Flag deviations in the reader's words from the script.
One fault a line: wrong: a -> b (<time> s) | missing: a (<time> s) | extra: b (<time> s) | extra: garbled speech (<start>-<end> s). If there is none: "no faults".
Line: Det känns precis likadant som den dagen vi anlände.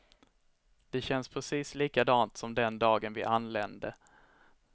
no faults